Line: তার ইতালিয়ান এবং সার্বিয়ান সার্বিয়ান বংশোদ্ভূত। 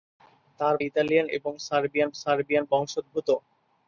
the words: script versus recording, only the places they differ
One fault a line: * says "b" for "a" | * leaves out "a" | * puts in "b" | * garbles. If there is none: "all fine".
all fine